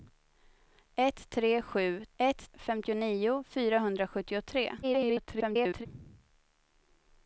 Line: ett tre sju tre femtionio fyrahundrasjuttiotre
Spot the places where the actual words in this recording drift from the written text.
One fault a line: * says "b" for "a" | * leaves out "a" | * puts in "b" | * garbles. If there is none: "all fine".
* says "ett" for "tre"
* garbles